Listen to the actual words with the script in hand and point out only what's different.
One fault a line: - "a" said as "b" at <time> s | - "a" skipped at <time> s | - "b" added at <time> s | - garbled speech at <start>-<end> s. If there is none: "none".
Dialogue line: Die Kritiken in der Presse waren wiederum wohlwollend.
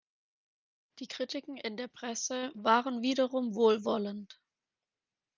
none